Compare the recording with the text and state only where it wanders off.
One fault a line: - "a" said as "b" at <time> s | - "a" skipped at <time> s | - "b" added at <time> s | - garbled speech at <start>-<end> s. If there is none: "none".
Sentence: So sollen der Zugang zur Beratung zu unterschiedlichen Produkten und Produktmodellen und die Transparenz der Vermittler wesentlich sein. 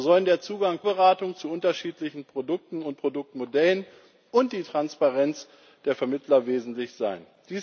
- "zur" skipped at 0.8 s